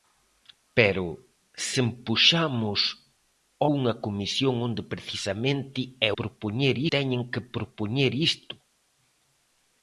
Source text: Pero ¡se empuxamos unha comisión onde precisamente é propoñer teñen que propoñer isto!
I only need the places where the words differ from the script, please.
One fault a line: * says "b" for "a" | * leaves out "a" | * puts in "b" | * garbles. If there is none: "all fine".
all fine